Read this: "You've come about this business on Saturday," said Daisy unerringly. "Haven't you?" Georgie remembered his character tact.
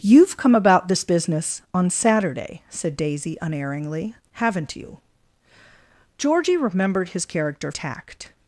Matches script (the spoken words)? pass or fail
pass